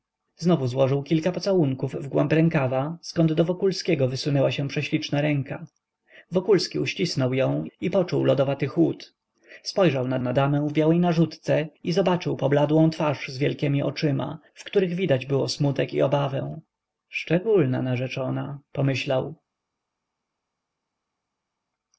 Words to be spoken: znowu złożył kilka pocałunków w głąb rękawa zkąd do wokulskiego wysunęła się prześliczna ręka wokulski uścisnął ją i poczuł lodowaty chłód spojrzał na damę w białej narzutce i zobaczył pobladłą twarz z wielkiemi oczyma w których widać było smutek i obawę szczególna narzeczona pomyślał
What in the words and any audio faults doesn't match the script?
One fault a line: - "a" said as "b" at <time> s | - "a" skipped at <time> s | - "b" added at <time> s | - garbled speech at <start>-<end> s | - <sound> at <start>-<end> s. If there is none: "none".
- "na" added at 10.2 s